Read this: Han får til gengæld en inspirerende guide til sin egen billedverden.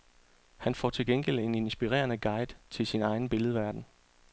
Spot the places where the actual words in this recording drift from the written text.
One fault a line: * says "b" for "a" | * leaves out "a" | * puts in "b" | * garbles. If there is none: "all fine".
all fine